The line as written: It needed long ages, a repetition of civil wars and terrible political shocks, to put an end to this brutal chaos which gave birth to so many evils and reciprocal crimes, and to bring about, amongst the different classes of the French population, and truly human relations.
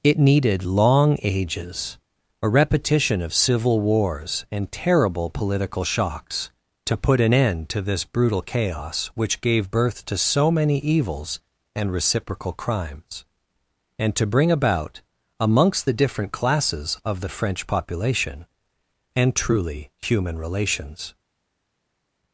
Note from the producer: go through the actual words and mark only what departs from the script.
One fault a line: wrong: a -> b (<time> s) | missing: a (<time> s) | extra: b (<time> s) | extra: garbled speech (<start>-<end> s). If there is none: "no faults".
no faults